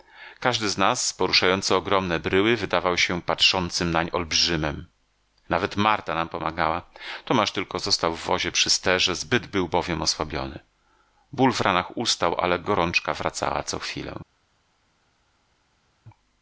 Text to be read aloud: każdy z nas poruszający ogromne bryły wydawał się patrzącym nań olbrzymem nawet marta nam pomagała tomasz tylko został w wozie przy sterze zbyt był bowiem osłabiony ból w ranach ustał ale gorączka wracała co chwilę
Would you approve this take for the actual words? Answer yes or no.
yes